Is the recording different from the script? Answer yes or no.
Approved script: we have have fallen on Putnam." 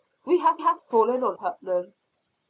no